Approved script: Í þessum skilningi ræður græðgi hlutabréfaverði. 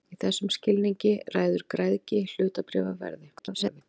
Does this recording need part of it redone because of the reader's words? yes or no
yes